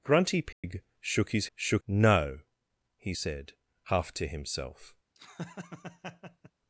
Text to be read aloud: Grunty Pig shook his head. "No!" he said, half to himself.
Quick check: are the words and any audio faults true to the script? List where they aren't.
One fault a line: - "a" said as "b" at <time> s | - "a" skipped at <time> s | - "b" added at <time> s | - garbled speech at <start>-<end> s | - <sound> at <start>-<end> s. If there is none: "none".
- dropout at 0.5-0.6 s
- "head" said as "shook" at 1.5 s
- laugh at 5.1-6.5 s